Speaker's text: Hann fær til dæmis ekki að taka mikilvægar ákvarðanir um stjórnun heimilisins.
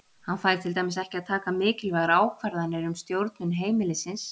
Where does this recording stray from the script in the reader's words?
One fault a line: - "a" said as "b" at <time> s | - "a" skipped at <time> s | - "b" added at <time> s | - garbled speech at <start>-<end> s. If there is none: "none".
none